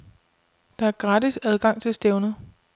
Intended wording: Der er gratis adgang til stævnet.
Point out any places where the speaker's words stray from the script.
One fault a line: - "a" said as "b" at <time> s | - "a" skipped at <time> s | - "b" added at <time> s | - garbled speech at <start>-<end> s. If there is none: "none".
none